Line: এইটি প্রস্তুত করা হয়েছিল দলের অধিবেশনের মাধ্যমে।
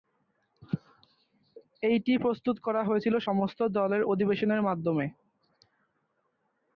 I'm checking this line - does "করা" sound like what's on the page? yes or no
yes